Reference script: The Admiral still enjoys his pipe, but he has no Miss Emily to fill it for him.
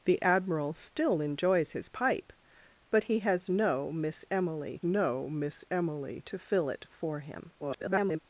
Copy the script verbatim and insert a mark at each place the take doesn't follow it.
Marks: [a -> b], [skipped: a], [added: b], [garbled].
The Admiral still enjoys his pipe, but he has no Miss Emily [added: no Miss Emily] to fill it for him. [garbled]